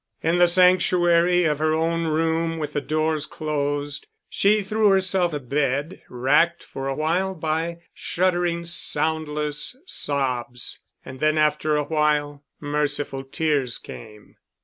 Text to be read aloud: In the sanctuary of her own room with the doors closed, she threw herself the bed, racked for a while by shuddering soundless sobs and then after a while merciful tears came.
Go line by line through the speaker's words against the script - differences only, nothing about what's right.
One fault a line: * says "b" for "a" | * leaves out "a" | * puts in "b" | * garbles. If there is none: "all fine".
all fine